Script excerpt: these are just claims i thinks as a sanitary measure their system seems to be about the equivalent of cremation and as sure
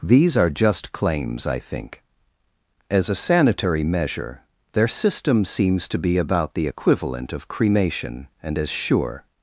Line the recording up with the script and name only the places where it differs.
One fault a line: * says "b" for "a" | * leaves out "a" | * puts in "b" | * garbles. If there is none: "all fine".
* says "think" for "thinks"